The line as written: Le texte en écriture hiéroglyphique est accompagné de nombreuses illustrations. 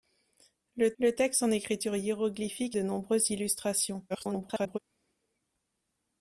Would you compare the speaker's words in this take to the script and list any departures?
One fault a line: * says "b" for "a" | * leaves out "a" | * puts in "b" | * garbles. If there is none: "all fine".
* puts in "le"
* leaves out "est accompagné"
* garbles